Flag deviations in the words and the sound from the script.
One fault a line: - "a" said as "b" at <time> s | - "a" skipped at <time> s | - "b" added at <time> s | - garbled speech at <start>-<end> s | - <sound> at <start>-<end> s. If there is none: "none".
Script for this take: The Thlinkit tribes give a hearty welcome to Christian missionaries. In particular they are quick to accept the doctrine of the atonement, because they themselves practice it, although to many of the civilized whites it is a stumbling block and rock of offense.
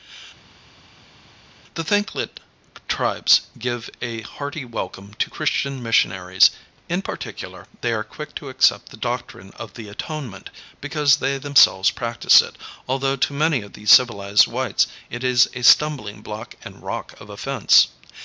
none